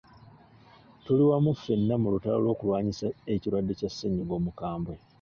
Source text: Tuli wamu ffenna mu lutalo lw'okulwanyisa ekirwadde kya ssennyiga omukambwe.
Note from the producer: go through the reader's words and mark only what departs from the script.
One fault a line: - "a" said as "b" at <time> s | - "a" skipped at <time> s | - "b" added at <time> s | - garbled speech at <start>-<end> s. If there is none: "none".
none